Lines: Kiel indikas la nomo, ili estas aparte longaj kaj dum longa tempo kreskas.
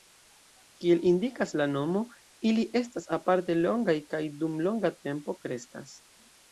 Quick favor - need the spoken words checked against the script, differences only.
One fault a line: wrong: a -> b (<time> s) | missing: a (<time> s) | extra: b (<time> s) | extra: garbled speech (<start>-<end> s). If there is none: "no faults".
no faults